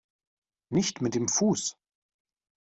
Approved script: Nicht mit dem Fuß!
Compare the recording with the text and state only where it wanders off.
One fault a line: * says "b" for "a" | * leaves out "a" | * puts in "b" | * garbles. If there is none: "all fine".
all fine